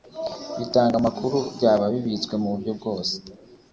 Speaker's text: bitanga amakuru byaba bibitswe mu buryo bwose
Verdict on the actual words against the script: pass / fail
pass